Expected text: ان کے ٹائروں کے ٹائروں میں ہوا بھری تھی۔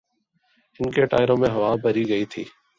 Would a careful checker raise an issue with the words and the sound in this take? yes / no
yes